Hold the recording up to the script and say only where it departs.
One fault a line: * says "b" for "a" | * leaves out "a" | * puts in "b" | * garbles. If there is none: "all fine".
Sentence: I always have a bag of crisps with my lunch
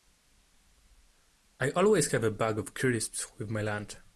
all fine